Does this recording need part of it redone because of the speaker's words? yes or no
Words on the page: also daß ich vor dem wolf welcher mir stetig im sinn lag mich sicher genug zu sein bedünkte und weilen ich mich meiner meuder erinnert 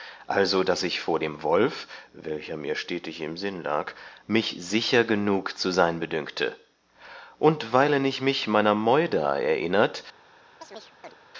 no